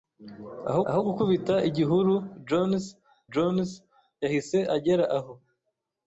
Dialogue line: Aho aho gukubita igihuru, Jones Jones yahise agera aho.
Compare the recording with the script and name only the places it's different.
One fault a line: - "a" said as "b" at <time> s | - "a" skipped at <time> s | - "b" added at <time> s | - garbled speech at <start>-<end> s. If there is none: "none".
none